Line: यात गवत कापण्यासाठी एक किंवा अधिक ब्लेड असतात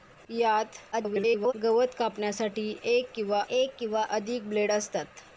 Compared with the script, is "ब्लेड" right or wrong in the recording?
right